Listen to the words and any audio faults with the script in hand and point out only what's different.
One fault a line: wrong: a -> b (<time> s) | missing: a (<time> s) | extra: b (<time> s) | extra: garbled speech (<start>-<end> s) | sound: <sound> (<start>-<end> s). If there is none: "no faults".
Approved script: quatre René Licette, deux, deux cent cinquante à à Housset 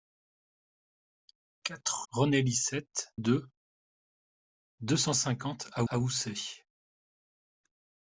no faults